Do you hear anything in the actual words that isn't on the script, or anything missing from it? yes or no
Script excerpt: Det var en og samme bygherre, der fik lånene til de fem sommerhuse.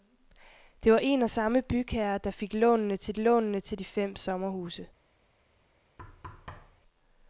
yes